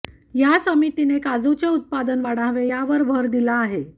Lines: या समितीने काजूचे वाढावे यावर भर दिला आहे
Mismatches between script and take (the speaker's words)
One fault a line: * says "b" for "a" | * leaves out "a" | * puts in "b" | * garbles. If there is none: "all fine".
* puts in "उत्पादन"